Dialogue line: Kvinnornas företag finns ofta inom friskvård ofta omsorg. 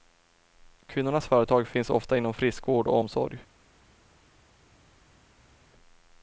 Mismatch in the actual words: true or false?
true